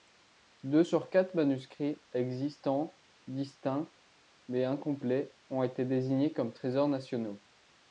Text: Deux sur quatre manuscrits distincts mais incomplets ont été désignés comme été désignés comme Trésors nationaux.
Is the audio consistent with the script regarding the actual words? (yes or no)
no